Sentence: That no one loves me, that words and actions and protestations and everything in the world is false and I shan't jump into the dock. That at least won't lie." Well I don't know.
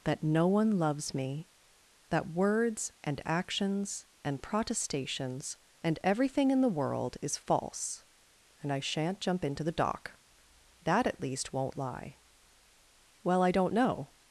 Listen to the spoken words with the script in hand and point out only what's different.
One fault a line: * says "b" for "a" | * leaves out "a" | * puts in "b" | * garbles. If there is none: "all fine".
all fine